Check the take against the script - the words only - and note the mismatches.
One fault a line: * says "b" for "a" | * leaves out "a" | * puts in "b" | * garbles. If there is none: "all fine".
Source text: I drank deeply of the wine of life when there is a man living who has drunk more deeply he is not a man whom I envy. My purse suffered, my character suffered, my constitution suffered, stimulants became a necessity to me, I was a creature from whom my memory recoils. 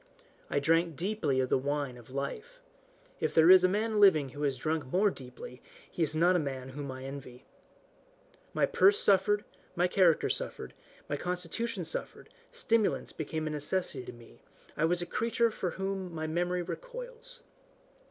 * says "if" for "when"